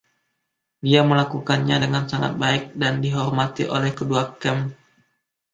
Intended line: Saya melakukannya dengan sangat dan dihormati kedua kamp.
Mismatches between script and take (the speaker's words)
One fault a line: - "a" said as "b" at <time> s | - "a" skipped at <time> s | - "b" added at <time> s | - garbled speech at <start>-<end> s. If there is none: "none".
- "Saya" said as "Dia" at 0.8 s
- "baik" added at 2.4 s
- "oleh" added at 3.7 s